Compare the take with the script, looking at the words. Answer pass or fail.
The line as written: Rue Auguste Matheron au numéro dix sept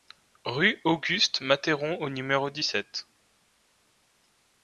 pass